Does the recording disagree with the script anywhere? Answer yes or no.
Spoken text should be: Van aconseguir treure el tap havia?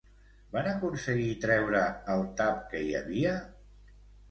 yes